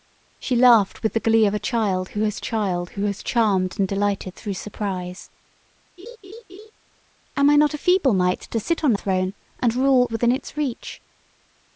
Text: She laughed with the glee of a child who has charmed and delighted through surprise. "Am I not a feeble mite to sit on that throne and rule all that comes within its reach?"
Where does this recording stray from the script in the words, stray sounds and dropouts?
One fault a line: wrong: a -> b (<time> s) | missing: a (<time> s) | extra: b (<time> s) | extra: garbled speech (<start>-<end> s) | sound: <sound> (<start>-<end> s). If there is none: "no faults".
extra: child who has (2.4 s)
sound: laugh (6.0-6.7 s)
missing: that (8.9 s)
missing: all that comes (10.1 s)